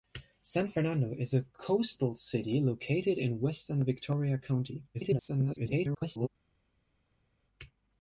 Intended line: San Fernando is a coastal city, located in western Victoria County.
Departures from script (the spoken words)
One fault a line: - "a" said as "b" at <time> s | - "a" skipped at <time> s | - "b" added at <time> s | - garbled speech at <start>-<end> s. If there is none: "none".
- garbled speech at 4.9-6.3 s